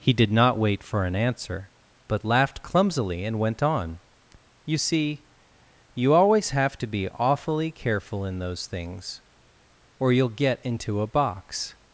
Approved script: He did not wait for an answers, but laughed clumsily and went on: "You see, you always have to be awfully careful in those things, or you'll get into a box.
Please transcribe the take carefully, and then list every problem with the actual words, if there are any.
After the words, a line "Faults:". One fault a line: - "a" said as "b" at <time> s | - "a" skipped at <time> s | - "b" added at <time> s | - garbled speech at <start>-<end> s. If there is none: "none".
He did not wait for an answer, but laughed clumsily and went on: "You see, you always have to be awfully careful in those things, or you'll get into a box.
Faults:
- "answers" said as "answer" at 1.2 s